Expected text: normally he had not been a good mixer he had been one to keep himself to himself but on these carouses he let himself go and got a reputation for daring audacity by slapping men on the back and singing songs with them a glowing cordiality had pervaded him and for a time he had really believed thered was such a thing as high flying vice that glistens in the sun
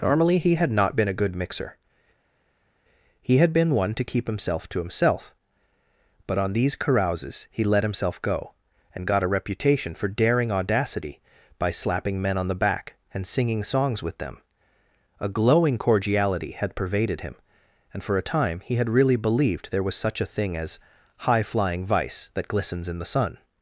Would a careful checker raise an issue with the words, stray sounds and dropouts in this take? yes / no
yes